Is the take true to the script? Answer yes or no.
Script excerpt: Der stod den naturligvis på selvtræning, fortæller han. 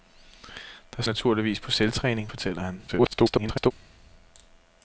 no